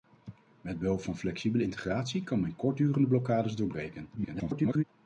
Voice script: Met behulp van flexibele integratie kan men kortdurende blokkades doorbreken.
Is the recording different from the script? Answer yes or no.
yes